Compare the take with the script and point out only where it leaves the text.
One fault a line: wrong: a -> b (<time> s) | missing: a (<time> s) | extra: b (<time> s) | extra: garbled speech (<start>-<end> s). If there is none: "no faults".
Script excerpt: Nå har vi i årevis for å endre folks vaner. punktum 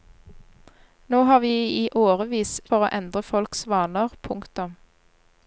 no faults